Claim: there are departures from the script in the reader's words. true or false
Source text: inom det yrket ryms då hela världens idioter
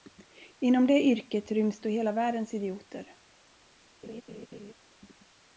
false